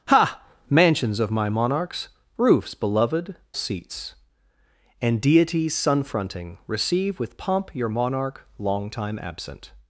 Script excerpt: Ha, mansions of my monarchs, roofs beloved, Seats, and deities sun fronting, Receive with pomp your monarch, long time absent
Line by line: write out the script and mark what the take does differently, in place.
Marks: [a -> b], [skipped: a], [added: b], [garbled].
Ha, mansions of my monarchs, roofs beloved, Seats, and deities sun fronting, Receive with pomp your monarch, long time absent